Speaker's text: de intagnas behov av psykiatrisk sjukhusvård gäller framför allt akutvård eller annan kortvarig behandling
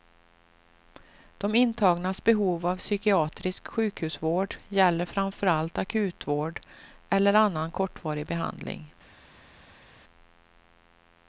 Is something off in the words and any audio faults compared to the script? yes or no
no